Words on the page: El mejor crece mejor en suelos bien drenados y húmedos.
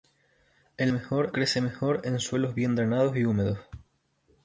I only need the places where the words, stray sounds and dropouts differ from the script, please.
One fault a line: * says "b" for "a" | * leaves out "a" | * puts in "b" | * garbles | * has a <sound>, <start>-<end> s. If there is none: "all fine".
all fine